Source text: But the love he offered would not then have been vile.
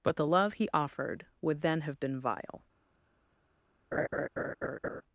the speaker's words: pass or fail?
fail